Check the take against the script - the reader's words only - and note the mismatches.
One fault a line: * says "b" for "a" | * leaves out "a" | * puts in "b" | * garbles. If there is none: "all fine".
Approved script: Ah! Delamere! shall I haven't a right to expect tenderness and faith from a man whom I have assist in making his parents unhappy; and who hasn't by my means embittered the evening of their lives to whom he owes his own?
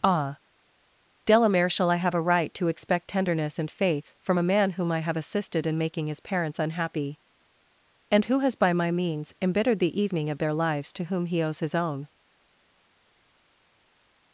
* says "have" for "haven't"
* says "assisted" for "assist"
* says "has" for "hasn't"